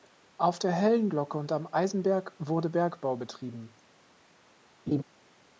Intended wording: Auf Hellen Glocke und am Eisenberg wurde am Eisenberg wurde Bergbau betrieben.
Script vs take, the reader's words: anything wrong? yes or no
yes